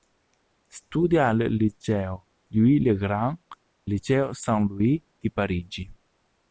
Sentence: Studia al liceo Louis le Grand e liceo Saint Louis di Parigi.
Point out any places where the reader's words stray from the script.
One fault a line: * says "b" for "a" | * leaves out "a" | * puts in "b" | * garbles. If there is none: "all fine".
all fine